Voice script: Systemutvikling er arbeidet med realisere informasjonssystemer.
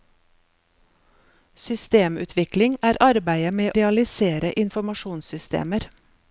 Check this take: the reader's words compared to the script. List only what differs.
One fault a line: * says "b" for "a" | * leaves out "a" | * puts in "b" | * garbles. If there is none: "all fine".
all fine